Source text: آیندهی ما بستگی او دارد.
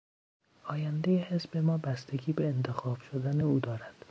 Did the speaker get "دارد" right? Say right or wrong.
right